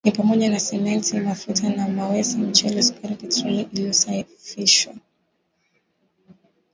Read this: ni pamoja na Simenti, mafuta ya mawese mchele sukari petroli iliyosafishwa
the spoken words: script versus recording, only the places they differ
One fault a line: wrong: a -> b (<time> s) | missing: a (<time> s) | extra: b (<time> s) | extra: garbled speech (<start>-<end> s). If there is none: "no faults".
no faults